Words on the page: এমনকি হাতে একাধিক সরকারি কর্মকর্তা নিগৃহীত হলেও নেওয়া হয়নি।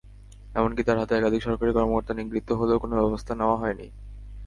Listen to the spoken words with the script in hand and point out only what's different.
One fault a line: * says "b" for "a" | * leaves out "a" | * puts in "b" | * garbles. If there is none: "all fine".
* puts in "তাঁর"
* puts in "কোনো ব্যবস্থা"